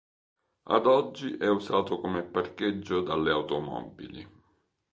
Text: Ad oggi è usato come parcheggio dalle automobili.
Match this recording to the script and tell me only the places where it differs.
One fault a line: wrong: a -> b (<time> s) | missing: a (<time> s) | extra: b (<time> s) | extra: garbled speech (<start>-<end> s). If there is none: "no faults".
no faults